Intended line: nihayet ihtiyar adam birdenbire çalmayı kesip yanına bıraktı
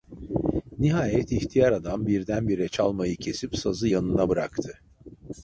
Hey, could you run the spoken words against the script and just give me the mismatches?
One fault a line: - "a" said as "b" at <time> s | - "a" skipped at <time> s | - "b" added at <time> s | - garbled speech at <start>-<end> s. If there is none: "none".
- "sazı" added at 3.6 s